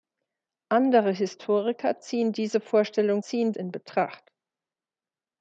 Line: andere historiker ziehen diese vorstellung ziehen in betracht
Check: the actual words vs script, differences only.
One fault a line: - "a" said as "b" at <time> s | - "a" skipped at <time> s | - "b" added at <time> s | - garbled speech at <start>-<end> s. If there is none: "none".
none